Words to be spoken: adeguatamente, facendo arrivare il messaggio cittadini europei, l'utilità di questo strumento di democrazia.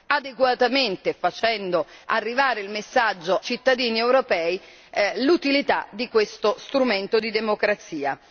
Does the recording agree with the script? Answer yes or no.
yes